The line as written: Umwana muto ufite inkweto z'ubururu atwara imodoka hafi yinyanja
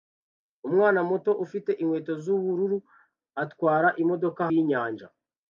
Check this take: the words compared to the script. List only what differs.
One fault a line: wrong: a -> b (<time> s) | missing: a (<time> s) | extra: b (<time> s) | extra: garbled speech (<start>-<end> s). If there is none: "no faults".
missing: hafi (4.4 s)